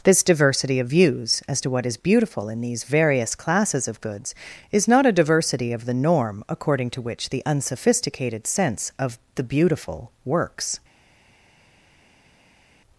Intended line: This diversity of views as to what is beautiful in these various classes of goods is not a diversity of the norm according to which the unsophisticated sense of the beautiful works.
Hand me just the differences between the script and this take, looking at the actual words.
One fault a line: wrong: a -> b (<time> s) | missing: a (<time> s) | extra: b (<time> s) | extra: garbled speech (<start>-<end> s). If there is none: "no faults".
no faults